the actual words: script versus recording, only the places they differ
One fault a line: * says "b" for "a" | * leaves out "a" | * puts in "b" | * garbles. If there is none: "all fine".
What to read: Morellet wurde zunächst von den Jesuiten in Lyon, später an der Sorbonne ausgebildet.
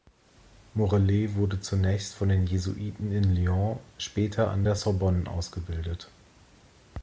all fine